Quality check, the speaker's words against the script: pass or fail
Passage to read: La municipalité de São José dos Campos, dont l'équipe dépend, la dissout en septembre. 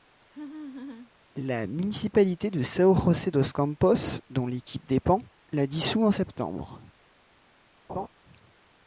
pass